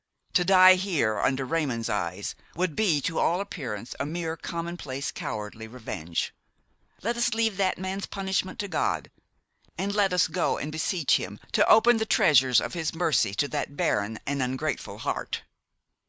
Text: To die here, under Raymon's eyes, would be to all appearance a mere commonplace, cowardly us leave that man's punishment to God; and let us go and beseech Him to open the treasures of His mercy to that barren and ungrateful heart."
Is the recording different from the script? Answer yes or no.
yes